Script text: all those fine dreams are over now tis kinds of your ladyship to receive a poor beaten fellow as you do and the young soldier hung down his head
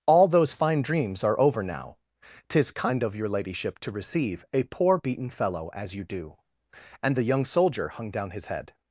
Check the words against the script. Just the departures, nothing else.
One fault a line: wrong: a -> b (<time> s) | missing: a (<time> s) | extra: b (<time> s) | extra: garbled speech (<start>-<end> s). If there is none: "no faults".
wrong: kinds -> kind (2.7 s)